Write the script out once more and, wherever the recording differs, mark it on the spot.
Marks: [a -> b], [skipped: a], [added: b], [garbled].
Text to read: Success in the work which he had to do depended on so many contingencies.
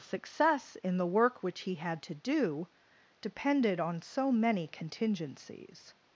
Success in the work which he had to do depended on so many contingencies.